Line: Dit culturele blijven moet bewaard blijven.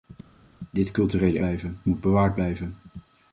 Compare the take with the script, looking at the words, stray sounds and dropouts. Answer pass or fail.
pass